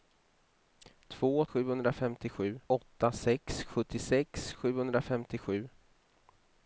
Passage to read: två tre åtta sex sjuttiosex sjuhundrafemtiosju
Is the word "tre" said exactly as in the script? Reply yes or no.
no